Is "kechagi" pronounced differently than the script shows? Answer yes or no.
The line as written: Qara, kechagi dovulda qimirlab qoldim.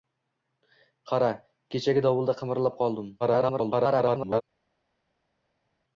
no